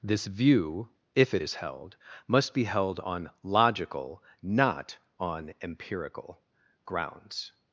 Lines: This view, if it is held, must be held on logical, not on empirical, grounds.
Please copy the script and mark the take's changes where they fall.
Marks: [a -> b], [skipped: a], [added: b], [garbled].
This view, if it is held, must be held on logical, not on empirical, grounds.